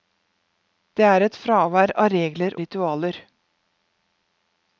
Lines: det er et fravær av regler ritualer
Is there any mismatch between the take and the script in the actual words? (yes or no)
no